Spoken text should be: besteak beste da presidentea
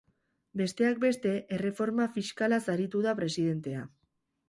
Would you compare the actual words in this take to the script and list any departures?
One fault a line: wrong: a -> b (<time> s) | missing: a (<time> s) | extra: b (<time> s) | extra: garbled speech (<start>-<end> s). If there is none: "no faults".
extra: erreforma fiskalaz aritu (1.6 s)